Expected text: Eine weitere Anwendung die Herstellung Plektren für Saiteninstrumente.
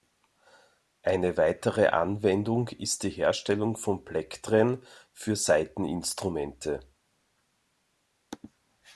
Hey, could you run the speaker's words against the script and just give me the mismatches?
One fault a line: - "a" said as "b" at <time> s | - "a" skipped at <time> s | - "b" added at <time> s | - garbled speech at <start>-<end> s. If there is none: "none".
- "ist" added at 2.7 s
- "von" added at 3.8 s